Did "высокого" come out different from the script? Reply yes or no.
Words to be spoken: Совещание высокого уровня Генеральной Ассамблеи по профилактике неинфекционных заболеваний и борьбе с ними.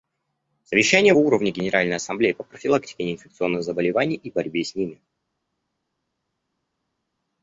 yes